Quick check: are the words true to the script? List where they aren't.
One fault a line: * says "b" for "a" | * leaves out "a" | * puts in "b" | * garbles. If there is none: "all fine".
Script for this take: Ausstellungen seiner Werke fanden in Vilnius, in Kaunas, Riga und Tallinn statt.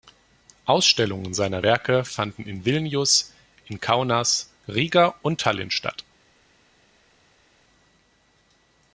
all fine